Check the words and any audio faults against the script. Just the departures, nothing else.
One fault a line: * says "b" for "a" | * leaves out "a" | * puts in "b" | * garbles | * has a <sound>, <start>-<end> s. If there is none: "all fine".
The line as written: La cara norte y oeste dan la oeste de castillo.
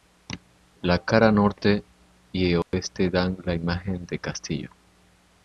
* has a dropout, 2.6-2.7 s
* says "imagen" for "oeste"